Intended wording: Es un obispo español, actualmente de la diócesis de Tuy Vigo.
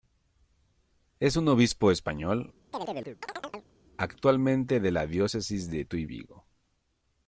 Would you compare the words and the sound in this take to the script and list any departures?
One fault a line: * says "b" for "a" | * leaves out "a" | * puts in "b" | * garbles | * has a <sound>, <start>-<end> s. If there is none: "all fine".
* has a chirp, 2.7-3.7 s